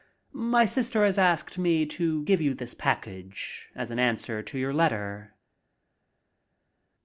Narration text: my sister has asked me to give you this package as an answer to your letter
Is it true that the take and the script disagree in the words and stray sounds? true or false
false